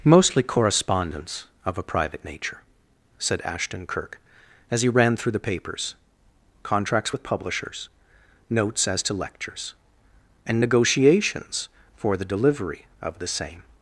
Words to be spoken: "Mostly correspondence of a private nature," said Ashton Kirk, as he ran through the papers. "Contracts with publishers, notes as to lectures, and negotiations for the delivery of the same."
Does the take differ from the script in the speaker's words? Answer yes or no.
no